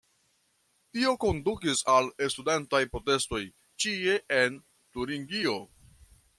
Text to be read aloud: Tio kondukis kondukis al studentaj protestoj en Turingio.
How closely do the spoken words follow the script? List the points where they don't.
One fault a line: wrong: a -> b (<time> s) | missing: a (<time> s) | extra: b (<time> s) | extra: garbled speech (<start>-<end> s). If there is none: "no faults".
missing: kondukis (1.8 s)
extra: ĉie (3.8 s)